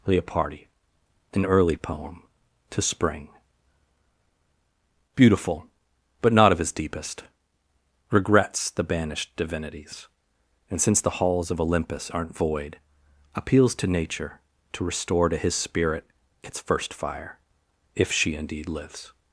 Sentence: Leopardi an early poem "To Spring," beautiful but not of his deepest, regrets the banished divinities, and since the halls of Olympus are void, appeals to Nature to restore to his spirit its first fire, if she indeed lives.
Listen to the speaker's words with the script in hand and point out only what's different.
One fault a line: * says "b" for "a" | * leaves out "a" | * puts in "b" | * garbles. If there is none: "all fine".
* says "aren't" for "are"